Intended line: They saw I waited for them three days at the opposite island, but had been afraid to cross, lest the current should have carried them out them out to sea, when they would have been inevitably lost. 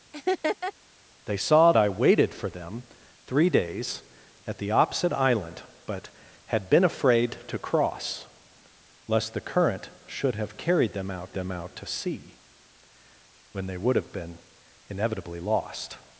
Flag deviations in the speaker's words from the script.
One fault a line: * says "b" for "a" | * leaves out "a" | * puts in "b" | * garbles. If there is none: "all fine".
all fine